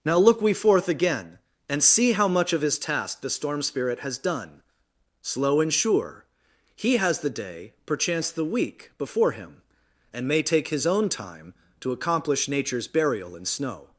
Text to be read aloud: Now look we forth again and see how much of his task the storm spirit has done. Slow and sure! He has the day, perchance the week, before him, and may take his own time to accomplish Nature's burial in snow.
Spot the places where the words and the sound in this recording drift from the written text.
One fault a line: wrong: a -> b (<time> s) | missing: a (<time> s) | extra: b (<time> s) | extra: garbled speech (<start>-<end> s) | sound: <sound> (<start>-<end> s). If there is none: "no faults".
no faults